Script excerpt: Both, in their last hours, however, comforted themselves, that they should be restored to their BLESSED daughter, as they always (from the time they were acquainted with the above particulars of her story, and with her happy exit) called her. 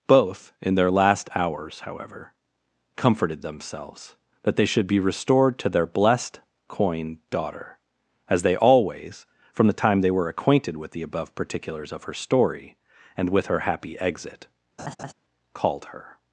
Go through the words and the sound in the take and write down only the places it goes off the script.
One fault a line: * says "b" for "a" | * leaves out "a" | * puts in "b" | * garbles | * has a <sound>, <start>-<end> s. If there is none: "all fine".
* puts in "coin"
* has a laugh, 14.8-15.1 s